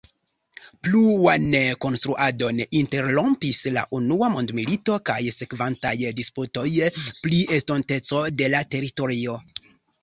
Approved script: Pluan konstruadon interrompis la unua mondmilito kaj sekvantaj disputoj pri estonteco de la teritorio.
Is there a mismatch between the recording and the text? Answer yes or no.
no